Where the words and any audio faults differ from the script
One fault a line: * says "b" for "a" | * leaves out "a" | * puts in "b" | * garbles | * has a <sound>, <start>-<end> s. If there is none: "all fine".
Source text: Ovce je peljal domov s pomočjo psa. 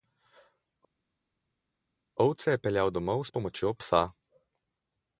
all fine